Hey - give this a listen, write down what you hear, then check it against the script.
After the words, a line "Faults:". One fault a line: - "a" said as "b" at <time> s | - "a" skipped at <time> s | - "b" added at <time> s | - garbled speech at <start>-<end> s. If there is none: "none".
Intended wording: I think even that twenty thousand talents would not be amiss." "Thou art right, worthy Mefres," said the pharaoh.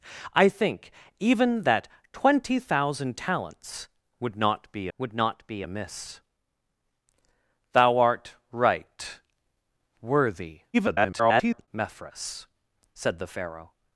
I think even that twenty thousand talents would not be would not be amiss." "Thou art right, worthy [garbled] Mefres," said the pharaoh.
Faults:
- "would not be" added at 5.0 s
- garbled speech at 10.7-11.7 s